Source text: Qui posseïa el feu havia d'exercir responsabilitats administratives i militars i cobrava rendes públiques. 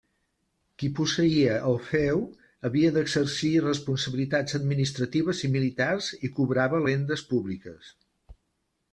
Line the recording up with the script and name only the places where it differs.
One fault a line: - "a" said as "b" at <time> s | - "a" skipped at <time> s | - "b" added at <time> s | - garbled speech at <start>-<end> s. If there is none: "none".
none